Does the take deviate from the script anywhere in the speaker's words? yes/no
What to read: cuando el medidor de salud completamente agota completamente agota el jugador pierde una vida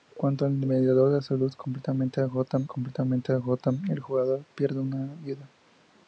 no